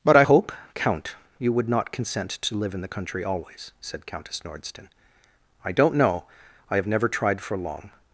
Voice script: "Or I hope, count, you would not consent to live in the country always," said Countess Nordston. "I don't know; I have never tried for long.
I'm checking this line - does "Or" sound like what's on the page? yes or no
no